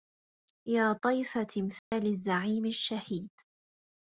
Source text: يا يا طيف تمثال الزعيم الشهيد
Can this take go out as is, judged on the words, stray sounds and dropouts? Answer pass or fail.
fail